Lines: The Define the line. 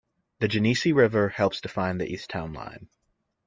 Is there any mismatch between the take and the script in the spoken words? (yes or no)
yes